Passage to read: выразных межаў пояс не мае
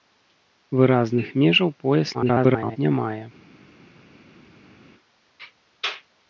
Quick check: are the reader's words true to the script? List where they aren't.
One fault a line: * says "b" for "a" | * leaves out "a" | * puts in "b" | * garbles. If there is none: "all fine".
* garbles